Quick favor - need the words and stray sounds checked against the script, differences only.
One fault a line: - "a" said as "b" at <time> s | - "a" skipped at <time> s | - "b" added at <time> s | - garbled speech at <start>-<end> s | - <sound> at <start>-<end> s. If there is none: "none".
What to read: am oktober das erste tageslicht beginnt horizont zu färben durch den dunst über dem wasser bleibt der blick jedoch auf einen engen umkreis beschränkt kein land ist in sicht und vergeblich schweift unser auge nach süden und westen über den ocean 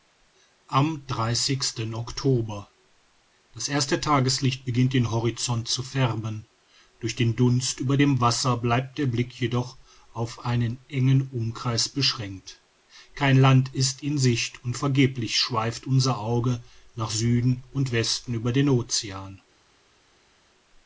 - "den" added at 4.9 s